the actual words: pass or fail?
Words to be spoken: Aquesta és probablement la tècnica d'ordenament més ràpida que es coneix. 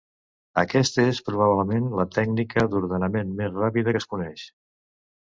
pass